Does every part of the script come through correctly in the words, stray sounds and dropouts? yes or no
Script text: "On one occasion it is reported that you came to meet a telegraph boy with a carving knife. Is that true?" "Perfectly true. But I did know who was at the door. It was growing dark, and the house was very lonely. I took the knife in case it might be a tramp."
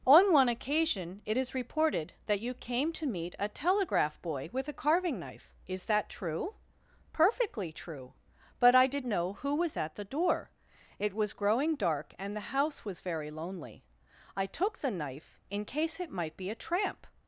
yes